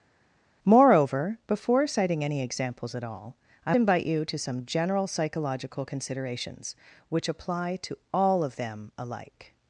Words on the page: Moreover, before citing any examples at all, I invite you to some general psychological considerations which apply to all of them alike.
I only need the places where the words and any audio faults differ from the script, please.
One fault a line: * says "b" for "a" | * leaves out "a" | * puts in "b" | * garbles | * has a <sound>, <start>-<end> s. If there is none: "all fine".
all fine